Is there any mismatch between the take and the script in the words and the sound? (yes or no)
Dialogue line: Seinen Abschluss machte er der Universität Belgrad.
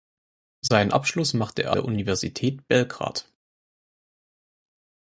no